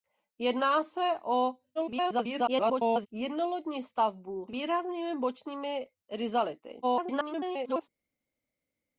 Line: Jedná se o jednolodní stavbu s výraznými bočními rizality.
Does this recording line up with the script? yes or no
no